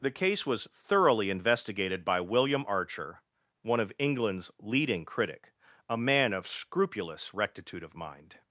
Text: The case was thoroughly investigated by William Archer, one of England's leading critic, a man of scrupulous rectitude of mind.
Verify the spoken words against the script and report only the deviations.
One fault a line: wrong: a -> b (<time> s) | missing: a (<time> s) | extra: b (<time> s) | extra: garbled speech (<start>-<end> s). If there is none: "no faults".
no faults